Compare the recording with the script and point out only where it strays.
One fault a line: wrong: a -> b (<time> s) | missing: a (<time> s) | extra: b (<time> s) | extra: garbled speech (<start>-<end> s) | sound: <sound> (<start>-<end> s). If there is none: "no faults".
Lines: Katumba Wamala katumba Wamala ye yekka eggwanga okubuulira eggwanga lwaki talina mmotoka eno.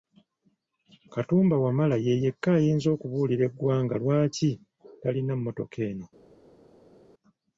missing: katumba Wamala (1.9 s)
wrong: eggwanga -> ayinza (2.6 s)